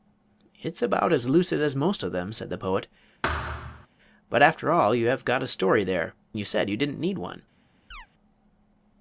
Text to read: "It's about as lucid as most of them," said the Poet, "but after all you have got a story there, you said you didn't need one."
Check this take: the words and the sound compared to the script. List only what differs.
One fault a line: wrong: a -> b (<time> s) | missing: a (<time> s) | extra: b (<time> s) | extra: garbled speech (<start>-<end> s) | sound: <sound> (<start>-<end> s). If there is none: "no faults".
sound: thud (3.2-3.9 s)
sound: chirp (7.9-8.1 s)